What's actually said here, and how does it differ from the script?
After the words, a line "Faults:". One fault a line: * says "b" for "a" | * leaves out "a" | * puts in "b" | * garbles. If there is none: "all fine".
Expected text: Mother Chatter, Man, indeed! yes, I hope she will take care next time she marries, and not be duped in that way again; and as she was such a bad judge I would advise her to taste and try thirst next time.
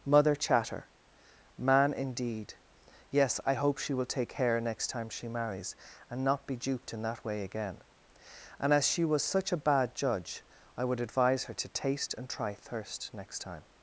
Mother Chatter, Man, indeed! yes, I hope she will take care next time she marries, and not be duped in that way again; and as she was such a bad judge I would advise her to taste and try thirst next time.
Faults:
all fine